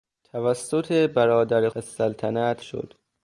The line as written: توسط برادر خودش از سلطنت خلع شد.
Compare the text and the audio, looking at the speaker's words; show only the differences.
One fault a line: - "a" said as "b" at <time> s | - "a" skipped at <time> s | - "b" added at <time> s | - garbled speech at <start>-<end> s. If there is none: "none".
- "خودش" skipped at 1.7 s
- "خلع" skipped at 2.6 s